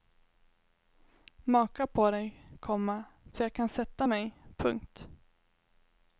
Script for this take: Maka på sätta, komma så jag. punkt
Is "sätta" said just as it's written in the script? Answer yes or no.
no